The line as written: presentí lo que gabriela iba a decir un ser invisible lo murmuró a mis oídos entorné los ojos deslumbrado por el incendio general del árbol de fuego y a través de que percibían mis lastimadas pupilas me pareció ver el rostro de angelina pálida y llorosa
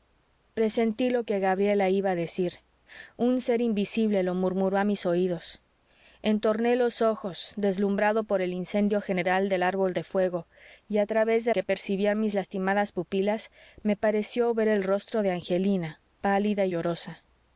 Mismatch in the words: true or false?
false